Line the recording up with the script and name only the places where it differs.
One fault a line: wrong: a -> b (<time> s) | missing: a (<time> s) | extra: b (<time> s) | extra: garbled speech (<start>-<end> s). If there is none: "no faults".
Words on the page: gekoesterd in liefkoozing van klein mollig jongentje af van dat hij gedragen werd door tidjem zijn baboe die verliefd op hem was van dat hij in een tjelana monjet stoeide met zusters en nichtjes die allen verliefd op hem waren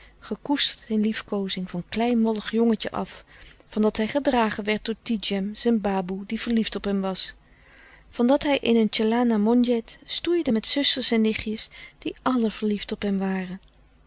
no faults